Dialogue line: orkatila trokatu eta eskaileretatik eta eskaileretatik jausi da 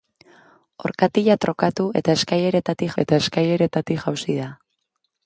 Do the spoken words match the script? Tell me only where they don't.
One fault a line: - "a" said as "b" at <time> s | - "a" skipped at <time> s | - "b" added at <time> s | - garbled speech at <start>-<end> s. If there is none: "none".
none